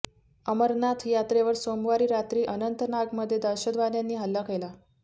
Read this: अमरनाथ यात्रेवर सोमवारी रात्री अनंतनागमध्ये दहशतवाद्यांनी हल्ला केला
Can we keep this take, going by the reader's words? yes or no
yes